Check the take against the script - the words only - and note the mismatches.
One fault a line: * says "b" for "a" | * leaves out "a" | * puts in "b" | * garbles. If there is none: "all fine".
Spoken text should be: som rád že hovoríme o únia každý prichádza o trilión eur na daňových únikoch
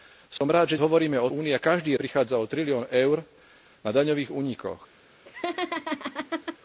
all fine